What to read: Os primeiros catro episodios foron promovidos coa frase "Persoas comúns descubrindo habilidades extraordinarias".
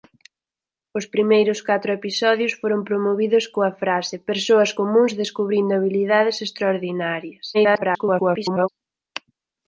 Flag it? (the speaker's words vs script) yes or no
yes